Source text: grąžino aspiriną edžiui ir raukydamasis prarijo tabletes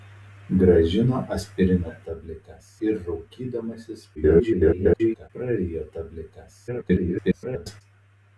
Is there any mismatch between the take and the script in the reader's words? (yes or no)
yes